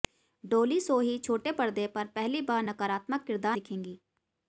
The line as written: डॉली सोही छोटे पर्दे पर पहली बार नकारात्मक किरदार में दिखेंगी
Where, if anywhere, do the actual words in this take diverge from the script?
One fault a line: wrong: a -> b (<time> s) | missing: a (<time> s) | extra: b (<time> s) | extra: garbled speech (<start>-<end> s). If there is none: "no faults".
missing: में (3.6 s)